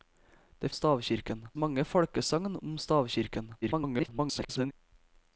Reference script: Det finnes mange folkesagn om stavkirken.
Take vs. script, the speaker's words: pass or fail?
fail